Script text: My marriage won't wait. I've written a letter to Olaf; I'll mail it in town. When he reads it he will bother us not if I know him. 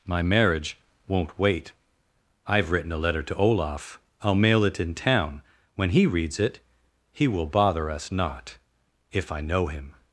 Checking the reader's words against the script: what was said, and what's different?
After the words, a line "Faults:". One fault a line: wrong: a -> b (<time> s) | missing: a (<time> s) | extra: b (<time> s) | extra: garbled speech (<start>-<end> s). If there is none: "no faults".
My marriage won't wait. I've written a letter to Olaf; I'll mail it in town. When he reads it he will bother us not if I know him.
Faults:
no faults